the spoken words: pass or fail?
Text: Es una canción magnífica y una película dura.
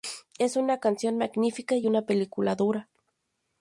pass